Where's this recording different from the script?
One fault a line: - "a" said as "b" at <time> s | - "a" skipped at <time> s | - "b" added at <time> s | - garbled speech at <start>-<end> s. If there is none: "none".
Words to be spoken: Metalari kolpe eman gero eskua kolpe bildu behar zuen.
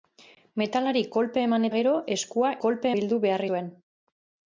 none